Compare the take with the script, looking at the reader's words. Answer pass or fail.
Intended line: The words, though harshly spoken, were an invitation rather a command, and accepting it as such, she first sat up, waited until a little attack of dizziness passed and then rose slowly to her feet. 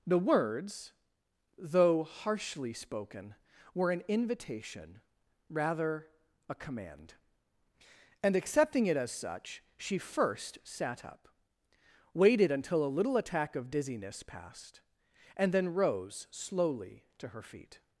pass